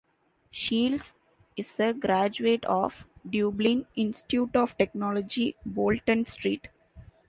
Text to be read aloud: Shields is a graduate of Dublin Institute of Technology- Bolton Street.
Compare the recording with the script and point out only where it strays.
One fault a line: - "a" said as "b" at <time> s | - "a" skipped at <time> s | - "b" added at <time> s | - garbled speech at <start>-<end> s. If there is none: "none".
none